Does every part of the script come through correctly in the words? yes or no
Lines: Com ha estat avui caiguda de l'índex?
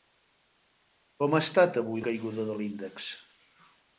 yes